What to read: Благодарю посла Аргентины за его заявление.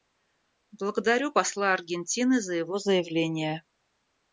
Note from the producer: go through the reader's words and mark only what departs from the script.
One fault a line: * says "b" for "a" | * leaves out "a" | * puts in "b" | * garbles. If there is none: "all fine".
all fine